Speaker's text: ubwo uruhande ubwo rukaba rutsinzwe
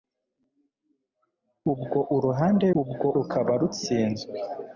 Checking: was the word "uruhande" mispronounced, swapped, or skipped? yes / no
no